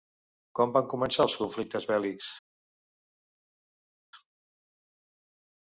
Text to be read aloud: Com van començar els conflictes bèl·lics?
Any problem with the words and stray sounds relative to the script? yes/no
no